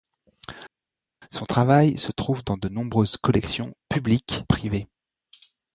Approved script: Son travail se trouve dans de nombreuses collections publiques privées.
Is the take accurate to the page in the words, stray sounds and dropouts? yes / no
yes